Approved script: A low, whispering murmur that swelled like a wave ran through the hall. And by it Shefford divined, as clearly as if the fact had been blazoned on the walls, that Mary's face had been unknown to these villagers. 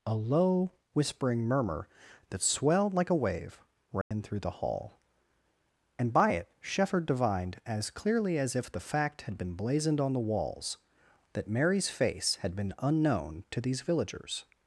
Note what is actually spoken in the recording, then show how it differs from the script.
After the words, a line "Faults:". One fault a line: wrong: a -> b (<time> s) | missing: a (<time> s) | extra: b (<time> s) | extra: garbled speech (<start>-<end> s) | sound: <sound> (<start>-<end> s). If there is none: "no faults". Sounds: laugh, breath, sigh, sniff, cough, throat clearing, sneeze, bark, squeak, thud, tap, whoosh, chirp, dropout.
A low, whispering murmur that swelled like a wave ran through the hall. And by it Shefford divined, as clearly as if the fact had been blazoned on the walls, that Mary's face had been unknown to these villagers.
Faults:
sound: dropout (4.0-4.1 s)